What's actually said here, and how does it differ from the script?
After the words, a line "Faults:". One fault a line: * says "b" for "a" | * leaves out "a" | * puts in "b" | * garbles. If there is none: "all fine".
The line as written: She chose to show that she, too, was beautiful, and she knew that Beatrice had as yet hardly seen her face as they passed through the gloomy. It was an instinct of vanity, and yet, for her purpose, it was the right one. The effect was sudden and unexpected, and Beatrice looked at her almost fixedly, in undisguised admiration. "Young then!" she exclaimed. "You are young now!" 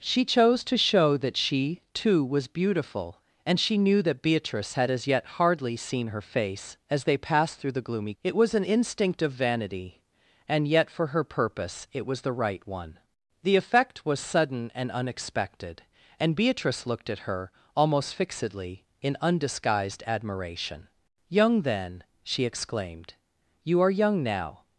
She chose to show that she, too, was beautiful, and she knew that Beatrice had as yet hardly seen her face as they passed through the gloomy. It was an instinct of vanity, and yet, for her purpose, it was the right one. The effect was sudden and unexpected, and Beatrice looked at her almost fixedly, in undisguised admiration. "Young then!" she exclaimed. "You are young now!"
Faults:
all fine